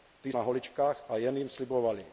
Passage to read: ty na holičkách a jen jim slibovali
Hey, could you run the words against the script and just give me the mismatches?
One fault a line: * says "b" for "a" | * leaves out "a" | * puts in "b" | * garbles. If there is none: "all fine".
all fine